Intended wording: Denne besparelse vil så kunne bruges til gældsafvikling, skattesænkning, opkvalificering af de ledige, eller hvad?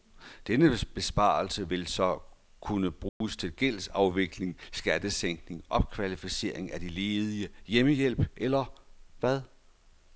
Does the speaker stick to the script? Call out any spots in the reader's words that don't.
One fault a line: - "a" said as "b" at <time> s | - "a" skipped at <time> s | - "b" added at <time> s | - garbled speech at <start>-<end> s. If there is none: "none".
- "hjemmehjælp" added at 7.7 s